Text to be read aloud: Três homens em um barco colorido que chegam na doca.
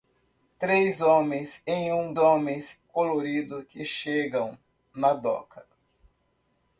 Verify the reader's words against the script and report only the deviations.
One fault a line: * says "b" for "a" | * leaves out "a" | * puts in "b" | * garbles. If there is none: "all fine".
* says "homens" for "barco"